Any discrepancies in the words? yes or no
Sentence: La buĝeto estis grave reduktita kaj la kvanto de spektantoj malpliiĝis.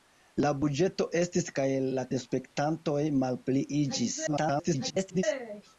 yes